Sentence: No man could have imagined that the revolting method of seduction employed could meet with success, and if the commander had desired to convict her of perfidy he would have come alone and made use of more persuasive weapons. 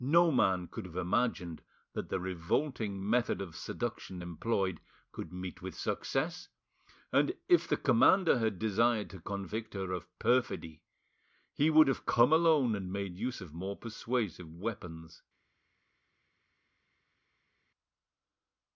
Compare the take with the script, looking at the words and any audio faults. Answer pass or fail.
pass